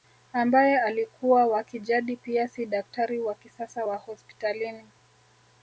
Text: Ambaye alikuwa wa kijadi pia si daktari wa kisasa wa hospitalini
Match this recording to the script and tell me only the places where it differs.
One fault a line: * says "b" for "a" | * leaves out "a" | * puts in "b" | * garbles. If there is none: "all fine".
all fine